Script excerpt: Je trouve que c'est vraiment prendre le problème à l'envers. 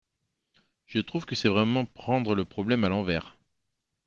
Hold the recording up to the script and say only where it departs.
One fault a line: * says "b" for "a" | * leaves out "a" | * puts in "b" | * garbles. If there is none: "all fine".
all fine